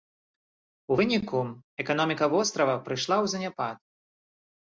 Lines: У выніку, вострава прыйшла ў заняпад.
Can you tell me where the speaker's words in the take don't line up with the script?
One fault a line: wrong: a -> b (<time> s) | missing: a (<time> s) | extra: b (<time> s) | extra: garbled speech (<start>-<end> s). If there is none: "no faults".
extra: эканоміка (1.8 s)